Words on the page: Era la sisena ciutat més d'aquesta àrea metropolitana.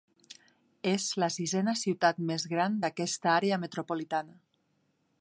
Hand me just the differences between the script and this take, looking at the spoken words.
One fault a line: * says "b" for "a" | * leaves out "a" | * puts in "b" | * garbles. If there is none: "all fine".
* says "És" for "Era"
* puts in "gran"